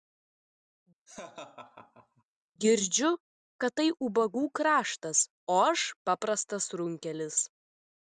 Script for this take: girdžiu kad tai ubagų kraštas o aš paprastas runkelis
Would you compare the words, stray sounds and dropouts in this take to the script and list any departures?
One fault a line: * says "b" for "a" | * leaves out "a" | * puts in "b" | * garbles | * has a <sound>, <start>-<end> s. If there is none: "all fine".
* has a laugh, 1.1-2.2 s